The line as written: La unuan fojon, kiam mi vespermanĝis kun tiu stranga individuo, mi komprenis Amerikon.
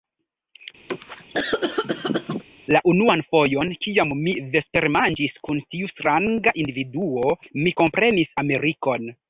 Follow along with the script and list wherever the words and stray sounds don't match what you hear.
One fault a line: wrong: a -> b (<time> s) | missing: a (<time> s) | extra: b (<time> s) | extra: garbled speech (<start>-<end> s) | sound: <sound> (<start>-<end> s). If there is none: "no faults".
sound: cough (0.9-2.4 s)